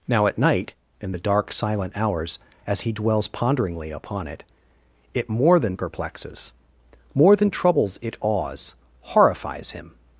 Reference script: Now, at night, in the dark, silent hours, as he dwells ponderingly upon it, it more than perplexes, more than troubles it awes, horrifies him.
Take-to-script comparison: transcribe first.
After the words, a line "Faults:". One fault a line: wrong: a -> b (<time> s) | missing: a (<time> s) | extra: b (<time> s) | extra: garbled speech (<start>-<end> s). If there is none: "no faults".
Now, at night, in the dark, silent hours, as he dwells ponderingly upon it, it more than perplexes, more than troubles it awes, horrifies him.
Faults:
no faults